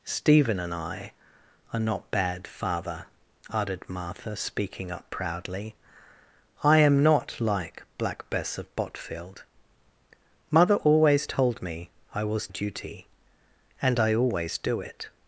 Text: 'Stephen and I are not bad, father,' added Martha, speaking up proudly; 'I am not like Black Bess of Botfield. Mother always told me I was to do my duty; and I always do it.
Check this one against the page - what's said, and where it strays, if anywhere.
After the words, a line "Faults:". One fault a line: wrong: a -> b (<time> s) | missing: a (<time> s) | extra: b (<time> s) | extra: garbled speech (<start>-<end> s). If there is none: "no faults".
'Stephen and I are not bad, father,' added Martha, speaking up proudly; 'I am not like Black Bess of Botfield. Mother always told me I was duty; and I always do it.
Faults:
missing: to do my (12.5 s)